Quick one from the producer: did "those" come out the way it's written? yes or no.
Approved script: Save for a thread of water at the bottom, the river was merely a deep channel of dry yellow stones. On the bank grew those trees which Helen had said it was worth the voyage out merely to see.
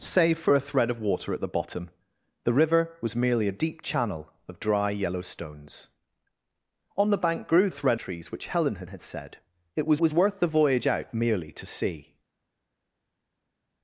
no